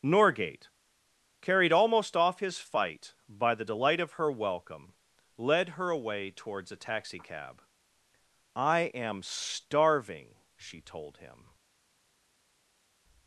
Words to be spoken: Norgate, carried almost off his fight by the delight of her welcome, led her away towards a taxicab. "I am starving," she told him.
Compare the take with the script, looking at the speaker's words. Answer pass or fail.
pass